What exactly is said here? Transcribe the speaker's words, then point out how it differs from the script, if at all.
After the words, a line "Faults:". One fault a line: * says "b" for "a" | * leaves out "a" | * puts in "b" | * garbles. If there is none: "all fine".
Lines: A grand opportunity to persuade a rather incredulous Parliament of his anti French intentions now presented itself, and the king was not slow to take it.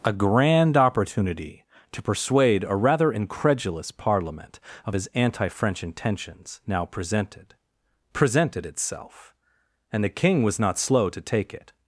A grand opportunity to persuade a rather incredulous Parliament of his anti French intentions now presented presented itself, and the king was not slow to take it.
Faults:
* puts in "presented"